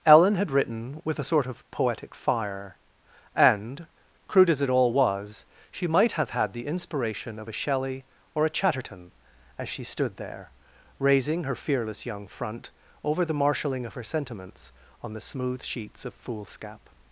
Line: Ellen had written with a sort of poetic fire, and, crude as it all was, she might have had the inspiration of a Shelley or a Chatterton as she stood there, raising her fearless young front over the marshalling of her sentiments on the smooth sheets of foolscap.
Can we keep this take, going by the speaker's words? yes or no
yes